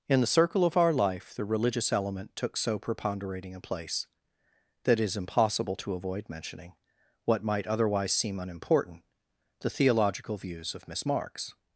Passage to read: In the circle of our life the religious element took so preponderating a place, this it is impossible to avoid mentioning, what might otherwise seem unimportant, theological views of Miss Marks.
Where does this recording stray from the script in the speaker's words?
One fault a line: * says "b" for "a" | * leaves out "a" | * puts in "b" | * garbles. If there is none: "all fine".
* says "that" for "this"
* puts in "the"